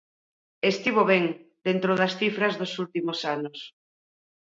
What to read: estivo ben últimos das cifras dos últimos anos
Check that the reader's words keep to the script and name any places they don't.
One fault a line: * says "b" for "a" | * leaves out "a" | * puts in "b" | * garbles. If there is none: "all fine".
* says "dentro" for "últimos"